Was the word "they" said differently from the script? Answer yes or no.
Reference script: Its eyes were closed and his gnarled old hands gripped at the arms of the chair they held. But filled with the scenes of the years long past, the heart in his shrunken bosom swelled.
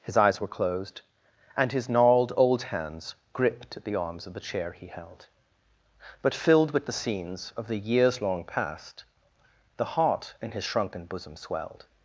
yes